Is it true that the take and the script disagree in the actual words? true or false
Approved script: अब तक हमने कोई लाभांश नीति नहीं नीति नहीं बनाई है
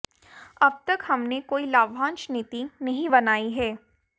true